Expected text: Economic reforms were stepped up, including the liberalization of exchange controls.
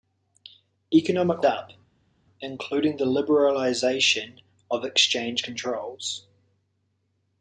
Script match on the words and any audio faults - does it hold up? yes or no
no